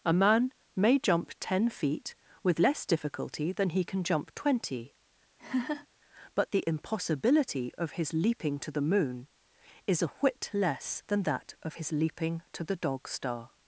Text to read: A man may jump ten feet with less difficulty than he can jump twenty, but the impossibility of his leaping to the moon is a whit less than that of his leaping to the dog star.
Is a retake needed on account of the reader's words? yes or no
no